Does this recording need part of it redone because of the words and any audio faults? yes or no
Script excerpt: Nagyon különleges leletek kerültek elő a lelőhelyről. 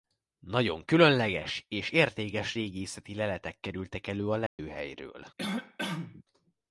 yes